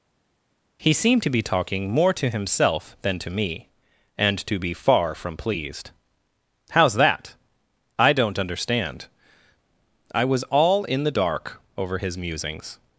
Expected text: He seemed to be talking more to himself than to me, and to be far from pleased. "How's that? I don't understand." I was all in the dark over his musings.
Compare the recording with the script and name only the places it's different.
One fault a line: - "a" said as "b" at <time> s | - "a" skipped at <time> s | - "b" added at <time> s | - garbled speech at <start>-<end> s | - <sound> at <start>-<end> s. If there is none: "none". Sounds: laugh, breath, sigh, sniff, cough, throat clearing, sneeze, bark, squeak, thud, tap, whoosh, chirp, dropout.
none